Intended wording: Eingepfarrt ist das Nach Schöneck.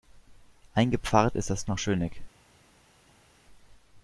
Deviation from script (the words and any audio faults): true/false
false